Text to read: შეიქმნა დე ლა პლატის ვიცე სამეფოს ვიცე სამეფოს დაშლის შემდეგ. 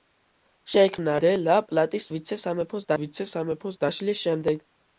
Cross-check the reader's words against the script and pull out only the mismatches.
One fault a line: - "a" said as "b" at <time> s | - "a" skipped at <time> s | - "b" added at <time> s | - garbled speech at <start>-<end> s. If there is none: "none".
none